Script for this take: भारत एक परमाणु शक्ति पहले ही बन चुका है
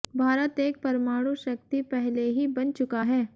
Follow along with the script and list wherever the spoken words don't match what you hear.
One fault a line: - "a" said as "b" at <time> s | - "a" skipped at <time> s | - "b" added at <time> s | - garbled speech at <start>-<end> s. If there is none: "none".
none